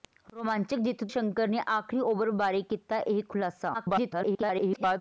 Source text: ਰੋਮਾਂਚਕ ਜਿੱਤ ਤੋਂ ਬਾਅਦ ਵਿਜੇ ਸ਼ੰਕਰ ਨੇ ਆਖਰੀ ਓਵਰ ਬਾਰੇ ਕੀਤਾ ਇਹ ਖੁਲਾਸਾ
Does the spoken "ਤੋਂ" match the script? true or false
false